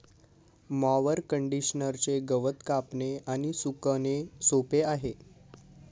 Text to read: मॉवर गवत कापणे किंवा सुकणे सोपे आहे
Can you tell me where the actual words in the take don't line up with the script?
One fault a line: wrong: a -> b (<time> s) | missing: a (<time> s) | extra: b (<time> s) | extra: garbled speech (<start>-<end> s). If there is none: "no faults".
extra: कंडिशनरचे (1.3 s)
wrong: किंवा -> आणि (3.3 s)